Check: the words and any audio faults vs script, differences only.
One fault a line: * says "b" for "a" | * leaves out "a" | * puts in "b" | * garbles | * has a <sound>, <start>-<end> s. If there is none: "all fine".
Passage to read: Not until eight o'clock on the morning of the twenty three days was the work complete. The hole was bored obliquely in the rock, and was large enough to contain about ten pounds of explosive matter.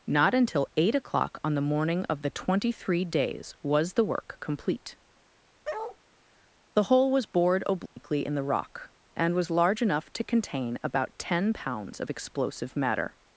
* has a bark, 5.6-6.0 s
* has a dropout, 7.9-8.0 s